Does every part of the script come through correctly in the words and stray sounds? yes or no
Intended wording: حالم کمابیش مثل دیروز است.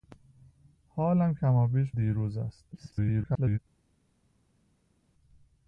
no